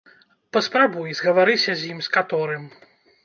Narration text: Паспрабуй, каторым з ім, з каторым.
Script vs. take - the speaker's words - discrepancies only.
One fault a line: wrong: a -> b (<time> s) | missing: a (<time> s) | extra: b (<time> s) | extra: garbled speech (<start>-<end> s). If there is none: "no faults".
wrong: каторым -> згаварыся (1.2 s)